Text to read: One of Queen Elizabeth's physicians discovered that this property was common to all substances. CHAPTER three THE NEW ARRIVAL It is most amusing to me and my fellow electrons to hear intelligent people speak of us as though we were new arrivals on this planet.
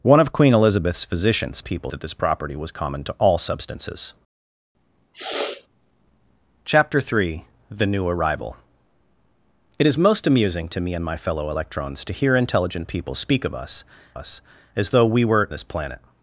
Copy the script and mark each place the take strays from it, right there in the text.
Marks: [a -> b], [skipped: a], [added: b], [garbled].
One of Queen Elizabeth's physicians [discovered -> people] that this property was common to all substances. CHAPTER three THE NEW ARRIVAL It is most amusing to me and my fellow electrons to hear intelligent people speak of us [added: us] as though we were [skipped: new arrivals on] this planet.